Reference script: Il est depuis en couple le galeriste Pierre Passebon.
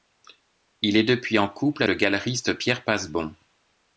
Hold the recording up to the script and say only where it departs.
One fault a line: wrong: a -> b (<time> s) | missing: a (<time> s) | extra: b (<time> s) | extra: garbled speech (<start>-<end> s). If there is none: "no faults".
no faults